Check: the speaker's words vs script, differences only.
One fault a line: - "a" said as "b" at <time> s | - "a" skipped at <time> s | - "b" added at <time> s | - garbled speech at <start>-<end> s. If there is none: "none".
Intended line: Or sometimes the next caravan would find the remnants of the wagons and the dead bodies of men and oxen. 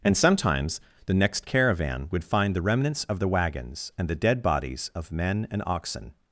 - "Or" said as "And" at 0.0 s